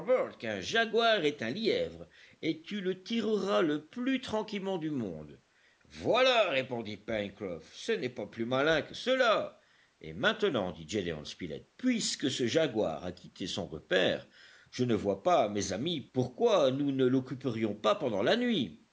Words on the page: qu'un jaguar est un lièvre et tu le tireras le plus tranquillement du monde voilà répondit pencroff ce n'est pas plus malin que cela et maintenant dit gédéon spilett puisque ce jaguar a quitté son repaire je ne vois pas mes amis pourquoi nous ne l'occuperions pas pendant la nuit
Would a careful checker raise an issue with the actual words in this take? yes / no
no